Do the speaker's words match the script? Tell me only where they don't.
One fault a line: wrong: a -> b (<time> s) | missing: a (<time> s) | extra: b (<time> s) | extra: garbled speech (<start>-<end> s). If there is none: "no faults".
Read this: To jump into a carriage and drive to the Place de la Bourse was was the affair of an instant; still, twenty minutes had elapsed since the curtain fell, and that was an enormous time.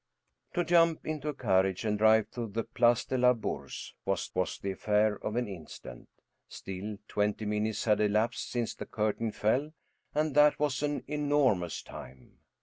no faults